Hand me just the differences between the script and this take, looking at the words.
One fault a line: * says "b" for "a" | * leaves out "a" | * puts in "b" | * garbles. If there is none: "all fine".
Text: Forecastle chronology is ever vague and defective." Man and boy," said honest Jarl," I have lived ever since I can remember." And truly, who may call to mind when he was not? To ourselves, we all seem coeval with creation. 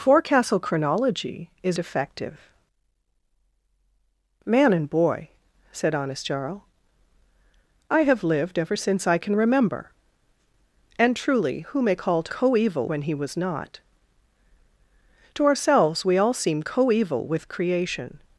* leaves out "ever vague and"
* says "coeval" for "mind"